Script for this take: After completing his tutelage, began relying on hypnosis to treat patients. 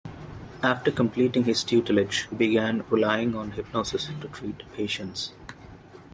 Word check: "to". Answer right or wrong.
right